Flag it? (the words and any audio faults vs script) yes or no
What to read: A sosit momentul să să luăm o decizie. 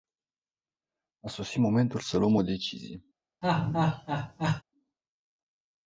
yes